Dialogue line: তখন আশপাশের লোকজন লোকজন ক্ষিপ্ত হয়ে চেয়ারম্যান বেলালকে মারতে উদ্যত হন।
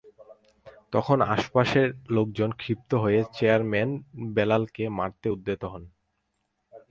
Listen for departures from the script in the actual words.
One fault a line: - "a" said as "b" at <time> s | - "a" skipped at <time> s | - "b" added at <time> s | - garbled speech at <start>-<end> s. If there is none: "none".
- "লোকজন" skipped at 2.5 s